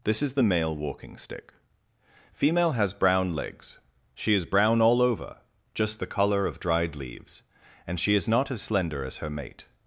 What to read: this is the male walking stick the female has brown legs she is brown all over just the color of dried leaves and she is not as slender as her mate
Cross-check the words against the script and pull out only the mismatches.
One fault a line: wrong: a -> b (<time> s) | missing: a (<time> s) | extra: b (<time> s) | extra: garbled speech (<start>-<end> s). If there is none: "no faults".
missing: the (1.5 s)